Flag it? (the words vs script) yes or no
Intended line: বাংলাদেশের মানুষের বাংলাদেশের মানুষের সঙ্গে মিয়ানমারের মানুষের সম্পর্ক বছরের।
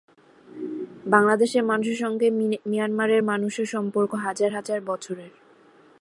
yes